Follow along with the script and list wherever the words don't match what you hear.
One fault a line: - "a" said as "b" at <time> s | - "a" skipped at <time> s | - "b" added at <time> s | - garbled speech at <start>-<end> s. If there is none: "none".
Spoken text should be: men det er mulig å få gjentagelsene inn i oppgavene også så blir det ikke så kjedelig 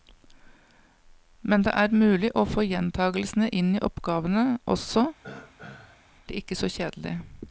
- "så blir" skipped at 5.1 s